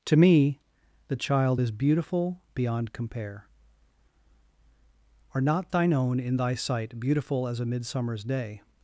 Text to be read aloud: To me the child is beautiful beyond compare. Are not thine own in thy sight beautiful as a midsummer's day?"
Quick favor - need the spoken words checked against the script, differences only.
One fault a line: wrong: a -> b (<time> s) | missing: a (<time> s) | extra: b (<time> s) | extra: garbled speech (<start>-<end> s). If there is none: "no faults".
no faults